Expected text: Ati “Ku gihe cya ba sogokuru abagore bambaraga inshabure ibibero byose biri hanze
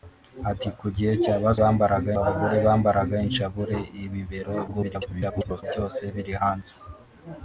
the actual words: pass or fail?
fail